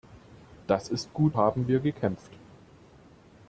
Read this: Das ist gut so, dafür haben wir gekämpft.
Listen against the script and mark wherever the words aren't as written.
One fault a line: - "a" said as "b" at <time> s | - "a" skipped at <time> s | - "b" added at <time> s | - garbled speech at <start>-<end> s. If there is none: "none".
- "so dafür" skipped at 1.4 s